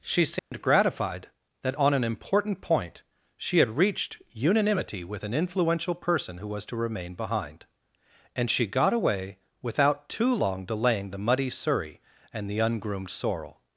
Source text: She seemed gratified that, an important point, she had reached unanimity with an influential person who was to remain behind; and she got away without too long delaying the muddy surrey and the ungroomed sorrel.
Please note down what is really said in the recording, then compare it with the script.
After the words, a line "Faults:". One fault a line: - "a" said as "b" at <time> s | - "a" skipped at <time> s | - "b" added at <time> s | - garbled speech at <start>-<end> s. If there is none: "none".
She seemed gratified that, on an important point, she had reached unanimity with an influential person who was to remain behind; and she got away without too long delaying the muddy surrey and the ungroomed sorrel.
Faults:
- "on" added at 1.7 s